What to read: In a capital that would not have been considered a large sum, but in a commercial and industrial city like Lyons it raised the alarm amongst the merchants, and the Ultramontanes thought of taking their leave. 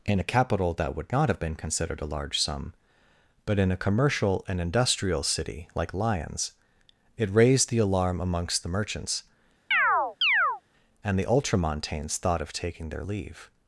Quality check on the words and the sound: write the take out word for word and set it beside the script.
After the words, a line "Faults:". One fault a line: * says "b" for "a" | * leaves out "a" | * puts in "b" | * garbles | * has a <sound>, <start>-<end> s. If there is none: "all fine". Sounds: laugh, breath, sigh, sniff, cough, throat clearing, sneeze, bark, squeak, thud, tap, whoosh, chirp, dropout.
In a capital that would not have been considered a large sum, but in a commercial and industrial city like Lyons it raised the alarm amongst the merchants, and the Ultramontanes thought of taking their leave.
Faults:
* has a chirp, 9.7-10.6 s